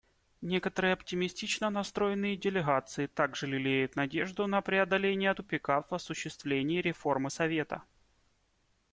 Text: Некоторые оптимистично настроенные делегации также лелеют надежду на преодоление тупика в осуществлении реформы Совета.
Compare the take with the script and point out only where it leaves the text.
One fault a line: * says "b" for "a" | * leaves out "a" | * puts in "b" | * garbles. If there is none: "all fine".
all fine